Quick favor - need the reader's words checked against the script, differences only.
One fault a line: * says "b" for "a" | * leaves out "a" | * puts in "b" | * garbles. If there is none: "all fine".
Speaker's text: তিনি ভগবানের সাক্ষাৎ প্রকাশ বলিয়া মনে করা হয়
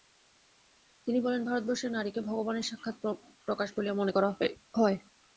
* puts in "বলেন ভারতবর্ষে নারীকে"